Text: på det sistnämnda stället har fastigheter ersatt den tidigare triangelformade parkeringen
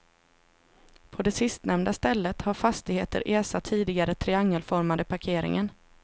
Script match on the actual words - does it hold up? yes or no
no